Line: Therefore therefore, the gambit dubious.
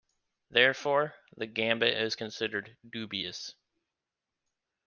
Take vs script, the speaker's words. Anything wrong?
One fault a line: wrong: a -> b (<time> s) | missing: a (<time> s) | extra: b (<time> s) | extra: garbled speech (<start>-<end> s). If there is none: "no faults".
missing: therefore (1.1 s)
extra: is considered (1.9 s)